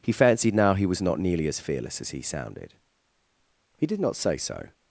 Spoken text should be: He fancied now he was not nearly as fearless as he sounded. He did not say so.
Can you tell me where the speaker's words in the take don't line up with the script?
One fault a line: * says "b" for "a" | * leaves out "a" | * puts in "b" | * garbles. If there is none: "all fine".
all fine